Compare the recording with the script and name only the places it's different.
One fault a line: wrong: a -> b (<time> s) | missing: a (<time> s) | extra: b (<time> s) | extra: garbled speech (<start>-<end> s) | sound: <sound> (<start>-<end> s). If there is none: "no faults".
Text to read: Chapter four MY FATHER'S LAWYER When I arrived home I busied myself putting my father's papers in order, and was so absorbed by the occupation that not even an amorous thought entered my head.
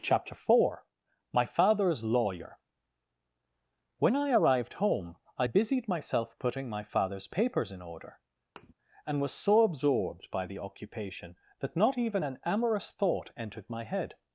sound: thud (8.6-8.7 s)